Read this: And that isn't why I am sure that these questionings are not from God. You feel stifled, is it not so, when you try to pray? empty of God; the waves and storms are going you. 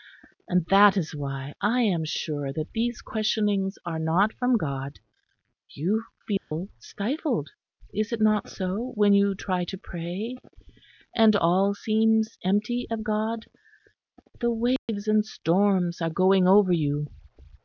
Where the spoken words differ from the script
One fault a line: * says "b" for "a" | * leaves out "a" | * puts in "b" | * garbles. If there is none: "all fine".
* says "is" for "isn't"
* puts in "and all seems"
* puts in "over"